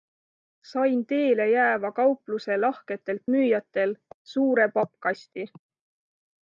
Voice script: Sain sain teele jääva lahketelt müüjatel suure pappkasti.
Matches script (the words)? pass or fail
fail